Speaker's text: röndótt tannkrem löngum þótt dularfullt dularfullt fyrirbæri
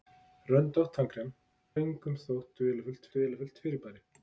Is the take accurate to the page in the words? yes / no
yes